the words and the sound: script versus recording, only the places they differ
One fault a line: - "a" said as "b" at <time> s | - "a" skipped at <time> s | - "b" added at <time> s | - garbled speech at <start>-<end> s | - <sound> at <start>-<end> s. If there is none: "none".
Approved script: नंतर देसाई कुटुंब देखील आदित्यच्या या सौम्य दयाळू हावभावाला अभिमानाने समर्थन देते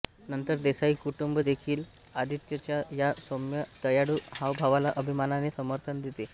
none